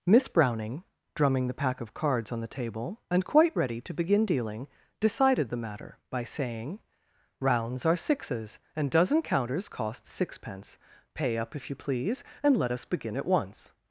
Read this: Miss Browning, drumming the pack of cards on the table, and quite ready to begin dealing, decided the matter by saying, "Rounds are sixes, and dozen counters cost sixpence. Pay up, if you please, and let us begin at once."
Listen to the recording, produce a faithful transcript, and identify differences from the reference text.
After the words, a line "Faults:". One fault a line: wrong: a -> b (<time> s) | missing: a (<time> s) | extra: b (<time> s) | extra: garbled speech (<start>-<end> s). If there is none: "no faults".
Miss Browning, drumming the pack of cards on the table, and quite ready to begin dealing, decided the matter by saying, "Rounds are sixes, and dozen counters cost sixpence. Pay up, if you please, and let us begin at once."
Faults:
no faults